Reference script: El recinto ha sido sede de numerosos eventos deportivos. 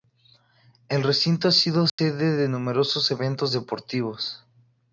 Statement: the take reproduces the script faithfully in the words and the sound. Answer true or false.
false